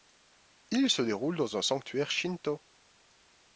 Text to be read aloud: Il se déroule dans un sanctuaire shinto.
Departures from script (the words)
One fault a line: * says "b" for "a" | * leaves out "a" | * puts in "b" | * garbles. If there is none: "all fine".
all fine